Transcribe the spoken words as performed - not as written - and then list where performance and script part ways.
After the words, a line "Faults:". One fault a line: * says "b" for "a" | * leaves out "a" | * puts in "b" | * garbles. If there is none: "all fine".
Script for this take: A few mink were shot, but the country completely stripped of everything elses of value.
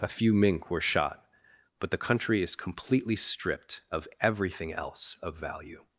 A few mink were shot, but the country is completely stripped of everything else of value.
Faults:
* puts in "is"
* says "else" for "elses"